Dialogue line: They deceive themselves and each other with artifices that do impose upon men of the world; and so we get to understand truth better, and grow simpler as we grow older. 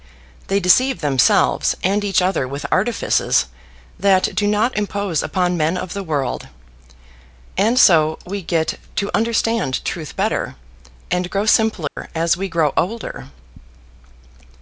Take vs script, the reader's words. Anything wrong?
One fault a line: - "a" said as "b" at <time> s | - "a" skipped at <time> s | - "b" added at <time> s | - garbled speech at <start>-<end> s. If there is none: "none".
- "not" added at 4.5 s